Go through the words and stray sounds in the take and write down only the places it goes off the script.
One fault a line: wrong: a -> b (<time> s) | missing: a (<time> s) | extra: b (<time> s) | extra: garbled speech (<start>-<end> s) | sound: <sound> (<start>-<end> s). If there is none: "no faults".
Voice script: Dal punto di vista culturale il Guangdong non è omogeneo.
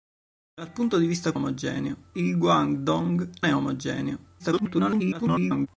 wrong: culturale -> omogeneo (1.3 s)
missing: non (3.3 s)
extra: garbled speech (4.4-5.7 s)